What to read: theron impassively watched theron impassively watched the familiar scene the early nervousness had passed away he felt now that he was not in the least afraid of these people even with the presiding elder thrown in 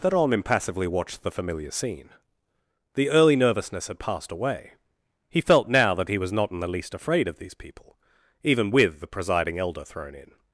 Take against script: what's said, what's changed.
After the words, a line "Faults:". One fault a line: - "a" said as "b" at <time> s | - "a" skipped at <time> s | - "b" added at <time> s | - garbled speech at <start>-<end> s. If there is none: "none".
theron impassively watched the familiar scene the early nervousness had passed away he felt now that he was not in the least afraid of these people even with the presiding elder thrown in
Faults:
- "theron impassively watched" skipped at 1.2 s